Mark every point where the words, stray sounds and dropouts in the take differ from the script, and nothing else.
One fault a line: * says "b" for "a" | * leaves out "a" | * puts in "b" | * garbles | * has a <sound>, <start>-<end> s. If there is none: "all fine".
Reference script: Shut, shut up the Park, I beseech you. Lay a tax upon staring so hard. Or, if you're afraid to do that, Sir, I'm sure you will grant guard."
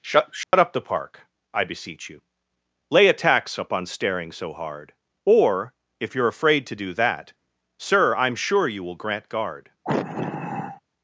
* has a dropout, 0.4-0.5 s
* has a sigh, 9.8-10.8 s